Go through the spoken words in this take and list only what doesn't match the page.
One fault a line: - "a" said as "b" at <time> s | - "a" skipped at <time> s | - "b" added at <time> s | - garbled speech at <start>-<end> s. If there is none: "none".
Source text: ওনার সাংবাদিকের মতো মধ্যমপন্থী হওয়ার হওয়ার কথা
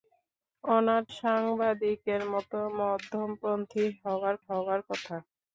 none